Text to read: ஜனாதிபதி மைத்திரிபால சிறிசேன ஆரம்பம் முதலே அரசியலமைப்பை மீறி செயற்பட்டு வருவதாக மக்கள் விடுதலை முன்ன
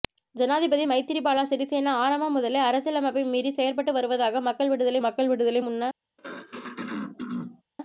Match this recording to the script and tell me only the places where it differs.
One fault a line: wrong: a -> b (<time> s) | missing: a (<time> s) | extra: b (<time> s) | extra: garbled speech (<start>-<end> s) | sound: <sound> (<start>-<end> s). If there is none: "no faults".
extra: மக்கள் விடுதலை (5.0 s)
sound: throat clearing (6.2-7.6 s)